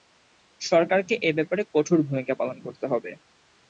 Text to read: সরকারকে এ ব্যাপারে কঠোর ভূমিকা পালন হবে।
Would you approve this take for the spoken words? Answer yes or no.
no